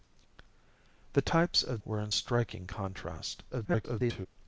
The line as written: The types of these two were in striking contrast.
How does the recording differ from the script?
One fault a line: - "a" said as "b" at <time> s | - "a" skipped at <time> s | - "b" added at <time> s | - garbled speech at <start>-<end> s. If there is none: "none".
- "these two" skipped at 1.8 s
- garbled speech at 3.5-4.3 s